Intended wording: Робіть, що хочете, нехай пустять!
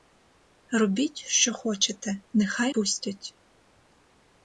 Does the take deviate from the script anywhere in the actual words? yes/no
no